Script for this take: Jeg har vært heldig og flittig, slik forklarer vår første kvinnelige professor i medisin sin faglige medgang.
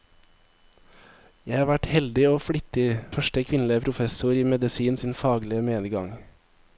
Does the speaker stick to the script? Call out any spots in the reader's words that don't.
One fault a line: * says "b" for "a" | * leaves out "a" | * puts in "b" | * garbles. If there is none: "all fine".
* leaves out "slik forklarer vår"